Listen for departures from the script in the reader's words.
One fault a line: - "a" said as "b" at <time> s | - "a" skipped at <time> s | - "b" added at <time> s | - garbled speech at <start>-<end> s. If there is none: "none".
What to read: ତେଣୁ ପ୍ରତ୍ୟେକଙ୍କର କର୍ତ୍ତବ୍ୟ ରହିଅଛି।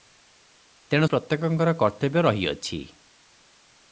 none